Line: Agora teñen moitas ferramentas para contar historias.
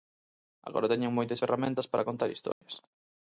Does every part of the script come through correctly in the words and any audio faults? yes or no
no